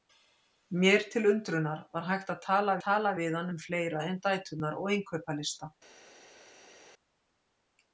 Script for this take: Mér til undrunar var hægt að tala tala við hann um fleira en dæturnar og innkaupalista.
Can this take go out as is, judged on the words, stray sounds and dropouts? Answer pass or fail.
pass